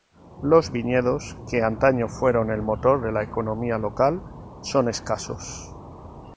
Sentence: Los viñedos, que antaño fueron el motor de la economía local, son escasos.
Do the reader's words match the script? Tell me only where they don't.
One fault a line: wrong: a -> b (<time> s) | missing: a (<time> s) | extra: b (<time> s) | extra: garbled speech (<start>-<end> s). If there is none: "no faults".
no faults